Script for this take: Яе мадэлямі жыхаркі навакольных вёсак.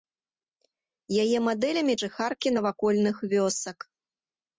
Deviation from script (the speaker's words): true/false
false